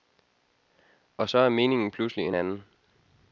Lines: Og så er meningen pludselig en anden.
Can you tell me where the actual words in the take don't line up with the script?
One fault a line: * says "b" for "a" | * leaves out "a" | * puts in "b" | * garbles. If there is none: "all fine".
all fine